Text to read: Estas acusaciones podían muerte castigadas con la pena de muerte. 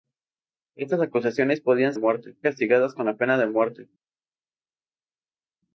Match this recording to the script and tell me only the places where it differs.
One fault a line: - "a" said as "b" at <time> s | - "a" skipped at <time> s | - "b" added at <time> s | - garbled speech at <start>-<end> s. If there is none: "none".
none